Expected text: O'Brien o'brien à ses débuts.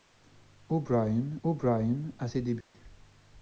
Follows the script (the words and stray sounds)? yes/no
no